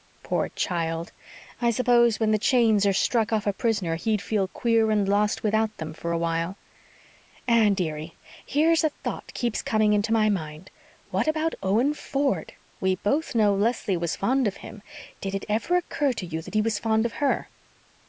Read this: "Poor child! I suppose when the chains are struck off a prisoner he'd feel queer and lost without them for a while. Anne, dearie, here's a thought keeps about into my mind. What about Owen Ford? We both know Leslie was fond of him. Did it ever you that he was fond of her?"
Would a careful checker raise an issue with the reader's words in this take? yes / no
yes